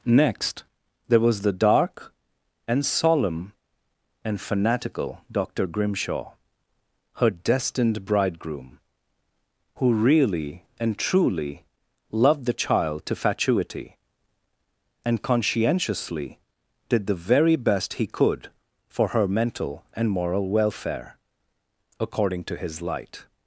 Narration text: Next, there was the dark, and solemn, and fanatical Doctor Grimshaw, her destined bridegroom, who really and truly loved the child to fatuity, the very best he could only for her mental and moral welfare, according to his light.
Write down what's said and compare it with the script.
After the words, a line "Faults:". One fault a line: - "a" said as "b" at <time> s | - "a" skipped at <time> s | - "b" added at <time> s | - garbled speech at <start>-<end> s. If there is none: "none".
Next, there was the dark, and solemn, and fanatical Doctor Grimshaw, her destined bridegroom, who really and truly loved the child to fatuity, and conscientiously did the very best he could for her mental and moral welfare, according to his light.
Faults:
- "and conscientiously did" added at 15.0 s
- "only" skipped at 18.5 s